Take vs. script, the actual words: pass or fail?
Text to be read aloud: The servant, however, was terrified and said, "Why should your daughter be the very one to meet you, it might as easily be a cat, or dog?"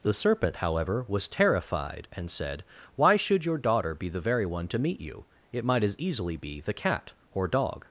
fail